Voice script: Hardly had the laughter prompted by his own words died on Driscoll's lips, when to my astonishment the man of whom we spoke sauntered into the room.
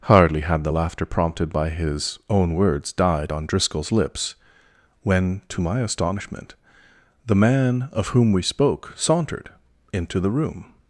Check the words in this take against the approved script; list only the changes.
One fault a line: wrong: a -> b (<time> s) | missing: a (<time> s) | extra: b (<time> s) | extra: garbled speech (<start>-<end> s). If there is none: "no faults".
no faults